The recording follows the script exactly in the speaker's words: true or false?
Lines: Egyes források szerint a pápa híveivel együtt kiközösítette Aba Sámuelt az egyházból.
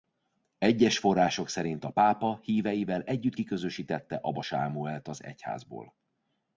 true